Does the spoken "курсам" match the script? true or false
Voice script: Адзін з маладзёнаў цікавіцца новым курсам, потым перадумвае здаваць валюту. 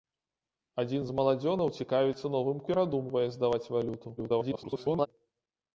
false